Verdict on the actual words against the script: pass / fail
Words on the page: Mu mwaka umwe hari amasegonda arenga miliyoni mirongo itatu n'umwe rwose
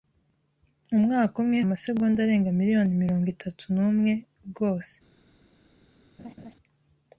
fail